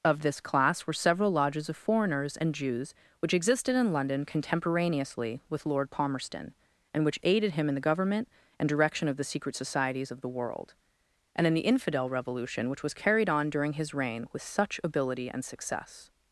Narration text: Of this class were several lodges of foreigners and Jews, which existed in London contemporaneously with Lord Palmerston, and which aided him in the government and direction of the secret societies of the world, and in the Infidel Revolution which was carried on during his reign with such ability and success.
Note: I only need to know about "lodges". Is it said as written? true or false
true